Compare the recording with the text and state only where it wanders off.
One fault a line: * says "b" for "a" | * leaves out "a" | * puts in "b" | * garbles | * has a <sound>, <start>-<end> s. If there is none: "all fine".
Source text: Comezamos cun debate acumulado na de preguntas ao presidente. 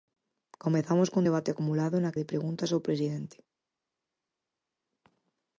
all fine